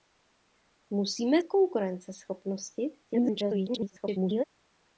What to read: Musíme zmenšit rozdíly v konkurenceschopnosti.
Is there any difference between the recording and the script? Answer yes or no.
yes